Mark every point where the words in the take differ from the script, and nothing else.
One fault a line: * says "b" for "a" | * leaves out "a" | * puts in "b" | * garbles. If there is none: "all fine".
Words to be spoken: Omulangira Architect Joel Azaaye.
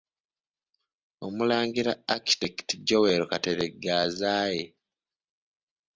* puts in "Kateregga"